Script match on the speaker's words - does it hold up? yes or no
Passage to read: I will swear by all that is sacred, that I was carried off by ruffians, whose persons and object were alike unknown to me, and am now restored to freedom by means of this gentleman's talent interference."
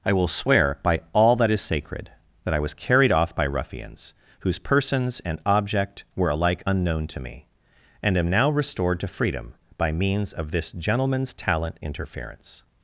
yes